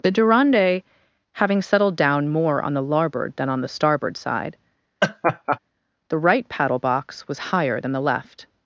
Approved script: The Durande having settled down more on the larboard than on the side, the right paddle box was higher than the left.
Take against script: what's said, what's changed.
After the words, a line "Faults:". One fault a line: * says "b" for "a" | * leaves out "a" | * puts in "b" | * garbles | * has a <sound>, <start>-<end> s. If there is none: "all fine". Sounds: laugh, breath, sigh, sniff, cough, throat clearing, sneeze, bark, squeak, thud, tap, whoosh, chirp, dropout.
The Durande having settled down more on the larboard than on the starboard side, the right paddle box was higher than the left.
Faults:
* puts in "starboard"
* has a laugh, 5.0-5.6 s